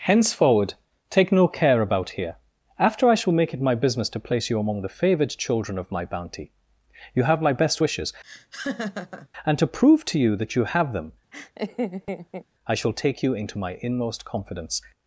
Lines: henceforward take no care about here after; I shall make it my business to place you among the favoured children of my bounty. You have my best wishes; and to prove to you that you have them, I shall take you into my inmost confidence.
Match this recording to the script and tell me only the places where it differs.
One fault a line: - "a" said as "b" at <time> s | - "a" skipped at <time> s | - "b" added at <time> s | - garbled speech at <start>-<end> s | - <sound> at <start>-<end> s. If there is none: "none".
- laugh at 8.2-9.3 s
- laugh at 11.3-12.5 s